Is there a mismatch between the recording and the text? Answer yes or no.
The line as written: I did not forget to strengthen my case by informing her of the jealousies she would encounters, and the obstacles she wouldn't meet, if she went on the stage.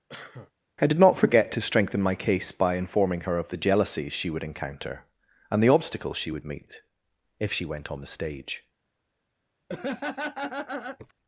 yes